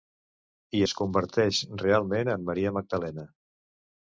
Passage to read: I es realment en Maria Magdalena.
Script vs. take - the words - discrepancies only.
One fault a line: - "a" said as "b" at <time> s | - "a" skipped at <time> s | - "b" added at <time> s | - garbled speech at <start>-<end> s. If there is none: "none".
- "converteix" added at 1.0 s